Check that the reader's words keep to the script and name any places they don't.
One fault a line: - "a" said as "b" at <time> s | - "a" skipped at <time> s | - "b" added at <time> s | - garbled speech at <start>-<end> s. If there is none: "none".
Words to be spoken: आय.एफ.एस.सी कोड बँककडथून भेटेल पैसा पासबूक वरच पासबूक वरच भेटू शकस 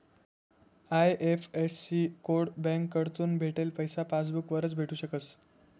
- "पासबूक वरच" skipped at 4.7 s